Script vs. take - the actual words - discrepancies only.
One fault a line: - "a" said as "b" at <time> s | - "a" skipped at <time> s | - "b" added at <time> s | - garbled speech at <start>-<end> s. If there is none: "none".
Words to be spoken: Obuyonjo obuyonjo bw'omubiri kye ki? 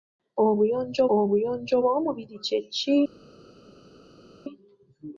none